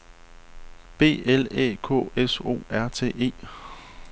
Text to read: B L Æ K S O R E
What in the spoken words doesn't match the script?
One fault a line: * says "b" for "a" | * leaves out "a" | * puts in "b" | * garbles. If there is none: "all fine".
* puts in "T"